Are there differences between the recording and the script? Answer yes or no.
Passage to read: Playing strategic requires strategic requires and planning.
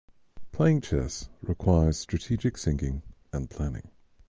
yes